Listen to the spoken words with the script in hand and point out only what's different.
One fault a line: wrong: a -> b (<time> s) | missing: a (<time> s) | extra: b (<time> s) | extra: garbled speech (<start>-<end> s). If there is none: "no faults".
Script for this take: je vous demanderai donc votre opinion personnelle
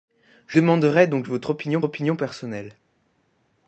missing: vous (0.6 s)
extra: opinion (1.8 s)